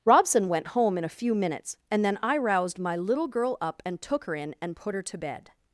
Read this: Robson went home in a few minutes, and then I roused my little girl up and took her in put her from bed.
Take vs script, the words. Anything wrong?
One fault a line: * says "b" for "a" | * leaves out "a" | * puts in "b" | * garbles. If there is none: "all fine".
* puts in "and"
* says "to" for "from"